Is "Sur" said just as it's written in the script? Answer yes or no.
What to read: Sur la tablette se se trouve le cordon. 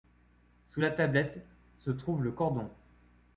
no